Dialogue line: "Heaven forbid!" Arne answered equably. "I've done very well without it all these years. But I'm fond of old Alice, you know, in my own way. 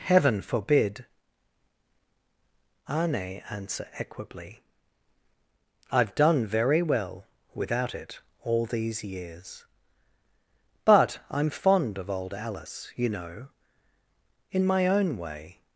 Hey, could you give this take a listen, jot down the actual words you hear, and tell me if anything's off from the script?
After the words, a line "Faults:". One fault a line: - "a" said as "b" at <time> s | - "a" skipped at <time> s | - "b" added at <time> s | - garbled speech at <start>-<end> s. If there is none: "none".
"Heaven forbid!" Arne answer equably. "I've done very well without it all these years. But I'm fond of old Alice, you know, in my own way.
Faults:
- "answered" said as "answer" at 3.5 s